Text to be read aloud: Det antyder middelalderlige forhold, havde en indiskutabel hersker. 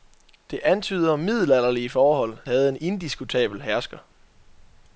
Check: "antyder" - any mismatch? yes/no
no